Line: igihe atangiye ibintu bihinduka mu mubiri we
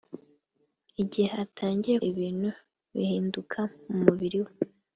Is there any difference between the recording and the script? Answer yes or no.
no